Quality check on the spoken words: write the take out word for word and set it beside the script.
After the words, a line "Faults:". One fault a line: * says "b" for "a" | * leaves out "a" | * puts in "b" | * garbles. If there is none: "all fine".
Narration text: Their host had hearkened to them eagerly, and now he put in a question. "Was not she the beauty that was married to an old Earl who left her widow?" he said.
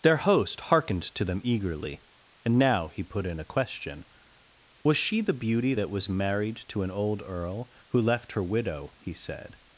Their host hearkened to them eagerly, and now he put in a question. "Was she the beauty that was married to an old Earl who left her widow?" he said.
Faults:
* leaves out "had"
* leaves out "not"